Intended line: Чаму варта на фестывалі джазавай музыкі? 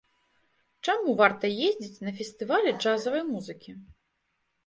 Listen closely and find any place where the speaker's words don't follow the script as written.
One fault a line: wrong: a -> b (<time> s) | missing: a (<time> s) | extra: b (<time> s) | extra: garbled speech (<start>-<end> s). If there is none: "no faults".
extra: ездзіць (1.7 s)